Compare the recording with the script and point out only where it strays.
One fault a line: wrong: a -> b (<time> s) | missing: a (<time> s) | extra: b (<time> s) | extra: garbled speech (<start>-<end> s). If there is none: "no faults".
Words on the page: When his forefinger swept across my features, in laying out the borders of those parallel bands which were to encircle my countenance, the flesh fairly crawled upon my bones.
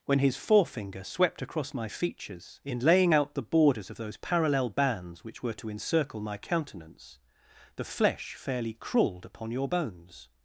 wrong: my -> your (9.5 s)